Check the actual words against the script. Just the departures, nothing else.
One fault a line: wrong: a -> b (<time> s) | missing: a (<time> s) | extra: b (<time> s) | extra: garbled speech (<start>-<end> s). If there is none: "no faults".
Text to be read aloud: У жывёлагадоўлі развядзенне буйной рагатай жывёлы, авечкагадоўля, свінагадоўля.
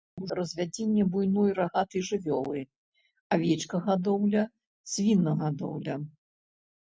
missing: жывёлагадоўлі (0.3 s)